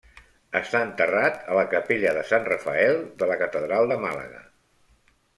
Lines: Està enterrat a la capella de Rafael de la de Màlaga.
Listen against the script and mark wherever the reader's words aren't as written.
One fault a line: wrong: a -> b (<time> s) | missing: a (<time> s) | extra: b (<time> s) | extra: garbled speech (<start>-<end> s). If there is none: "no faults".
extra: sant (2.3 s)
extra: catedral (3.4 s)